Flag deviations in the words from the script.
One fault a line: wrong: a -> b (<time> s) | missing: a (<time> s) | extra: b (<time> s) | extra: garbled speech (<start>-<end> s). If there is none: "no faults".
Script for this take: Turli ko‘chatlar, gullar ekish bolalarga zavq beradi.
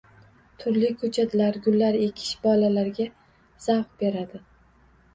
no faults